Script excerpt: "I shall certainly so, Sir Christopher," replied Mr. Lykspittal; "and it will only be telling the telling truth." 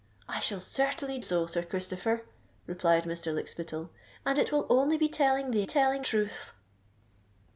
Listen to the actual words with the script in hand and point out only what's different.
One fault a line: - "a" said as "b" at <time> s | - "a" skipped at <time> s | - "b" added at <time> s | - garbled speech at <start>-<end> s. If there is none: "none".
none